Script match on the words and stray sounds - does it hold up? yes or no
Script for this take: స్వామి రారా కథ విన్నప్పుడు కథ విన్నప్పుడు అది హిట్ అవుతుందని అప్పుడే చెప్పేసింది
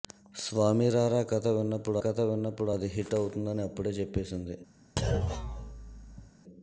no